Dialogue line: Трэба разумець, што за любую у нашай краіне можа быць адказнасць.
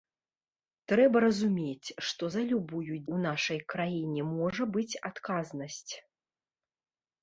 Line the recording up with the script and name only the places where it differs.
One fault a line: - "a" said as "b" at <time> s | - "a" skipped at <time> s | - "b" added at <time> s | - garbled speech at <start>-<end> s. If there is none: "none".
none